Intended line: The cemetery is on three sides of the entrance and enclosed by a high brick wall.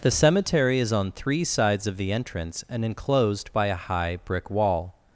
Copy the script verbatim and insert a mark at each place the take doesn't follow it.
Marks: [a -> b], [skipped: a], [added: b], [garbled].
The cemetery is on three sides of the entrance and enclosed by a high brick wall.